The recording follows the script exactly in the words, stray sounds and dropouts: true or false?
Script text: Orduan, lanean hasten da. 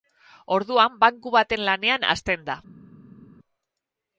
false